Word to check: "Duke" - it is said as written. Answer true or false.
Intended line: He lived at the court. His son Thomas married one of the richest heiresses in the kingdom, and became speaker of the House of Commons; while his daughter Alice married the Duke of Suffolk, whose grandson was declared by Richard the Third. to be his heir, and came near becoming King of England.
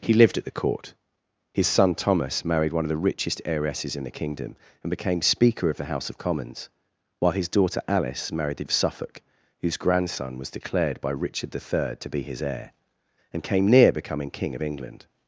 false